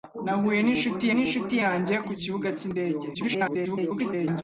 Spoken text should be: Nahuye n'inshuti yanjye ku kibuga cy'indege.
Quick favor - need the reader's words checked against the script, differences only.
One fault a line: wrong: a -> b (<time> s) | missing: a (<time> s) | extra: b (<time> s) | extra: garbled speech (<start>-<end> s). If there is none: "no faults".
extra: n'inshuti (1.1 s)
extra: garbled speech (3.1-4.4 s)